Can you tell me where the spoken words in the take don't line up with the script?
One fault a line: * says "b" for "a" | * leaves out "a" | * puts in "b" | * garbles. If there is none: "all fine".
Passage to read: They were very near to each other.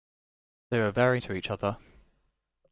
* leaves out "near"